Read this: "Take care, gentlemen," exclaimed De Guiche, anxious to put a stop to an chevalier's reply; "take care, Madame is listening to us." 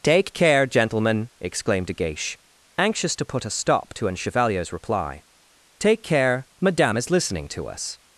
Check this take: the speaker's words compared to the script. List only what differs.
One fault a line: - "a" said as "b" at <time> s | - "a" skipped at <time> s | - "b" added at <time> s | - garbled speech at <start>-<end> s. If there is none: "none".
none